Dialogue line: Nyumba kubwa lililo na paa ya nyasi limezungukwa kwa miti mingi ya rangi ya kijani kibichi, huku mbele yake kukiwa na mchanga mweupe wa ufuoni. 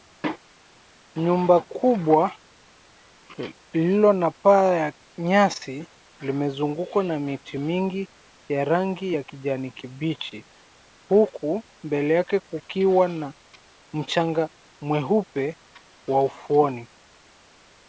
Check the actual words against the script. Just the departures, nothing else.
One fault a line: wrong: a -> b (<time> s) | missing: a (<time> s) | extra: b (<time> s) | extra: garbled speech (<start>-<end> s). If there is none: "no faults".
wrong: kwa -> na (7.0 s)